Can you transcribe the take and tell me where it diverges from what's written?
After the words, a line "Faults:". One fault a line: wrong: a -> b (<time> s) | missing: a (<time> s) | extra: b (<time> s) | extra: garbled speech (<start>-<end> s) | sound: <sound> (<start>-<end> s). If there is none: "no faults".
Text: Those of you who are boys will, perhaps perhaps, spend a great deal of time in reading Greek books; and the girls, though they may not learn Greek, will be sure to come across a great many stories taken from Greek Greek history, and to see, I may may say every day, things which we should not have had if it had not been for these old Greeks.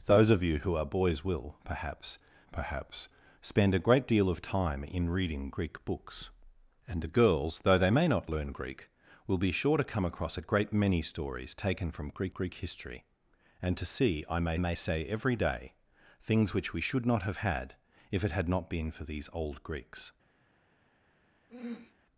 Those of you who are boys will, perhaps perhaps, spend a great deal of time in reading Greek books; and the girls, though they may not learn Greek, will be sure to come across a great many stories taken from Greek Greek history, and to see, I may may say every day, things which we should not have had if it had not been for these old Greeks.
Faults:
sound: throat clearing (21.5-21.9 s)